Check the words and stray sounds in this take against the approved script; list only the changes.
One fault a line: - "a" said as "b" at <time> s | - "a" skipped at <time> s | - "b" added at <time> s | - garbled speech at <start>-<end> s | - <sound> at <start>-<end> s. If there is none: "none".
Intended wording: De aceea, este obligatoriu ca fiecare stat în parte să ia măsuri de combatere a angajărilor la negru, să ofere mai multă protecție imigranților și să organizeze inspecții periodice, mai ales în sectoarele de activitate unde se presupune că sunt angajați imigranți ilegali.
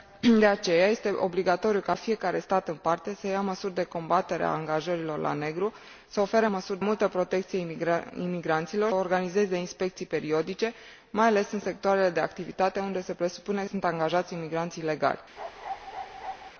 - "mai" said as "măsuri" at 6.5 s
- "și să" skipped at 8.9 s
- "că" skipped at 13.6 s
- bark at 15.4-16.5 s